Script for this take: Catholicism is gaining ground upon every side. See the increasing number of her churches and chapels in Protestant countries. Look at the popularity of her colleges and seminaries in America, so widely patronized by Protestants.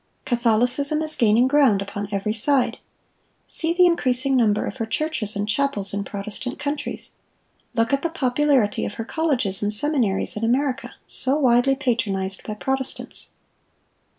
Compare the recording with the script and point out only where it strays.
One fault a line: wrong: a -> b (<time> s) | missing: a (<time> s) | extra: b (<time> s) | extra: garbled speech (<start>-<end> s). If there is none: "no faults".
no faults